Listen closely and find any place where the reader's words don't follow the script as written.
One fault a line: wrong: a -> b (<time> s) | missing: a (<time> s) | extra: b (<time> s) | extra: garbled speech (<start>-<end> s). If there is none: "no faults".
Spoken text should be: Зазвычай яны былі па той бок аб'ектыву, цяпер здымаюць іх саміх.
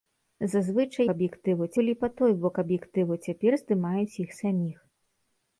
wrong: яны -> аб'ектыву (1.1 s)